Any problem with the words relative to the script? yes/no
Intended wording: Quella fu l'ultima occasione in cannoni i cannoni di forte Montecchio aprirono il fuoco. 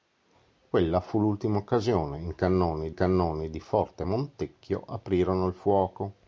no